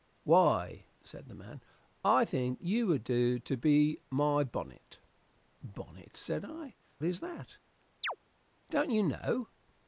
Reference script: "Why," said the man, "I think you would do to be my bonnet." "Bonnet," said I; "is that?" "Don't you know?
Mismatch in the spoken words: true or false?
false